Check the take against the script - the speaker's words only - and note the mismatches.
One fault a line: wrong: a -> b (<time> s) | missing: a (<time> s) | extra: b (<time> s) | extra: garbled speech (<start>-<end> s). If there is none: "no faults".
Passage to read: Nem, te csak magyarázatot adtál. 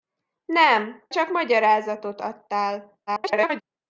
missing: te (1.1 s)
extra: garbled speech (3.1-3.6 s)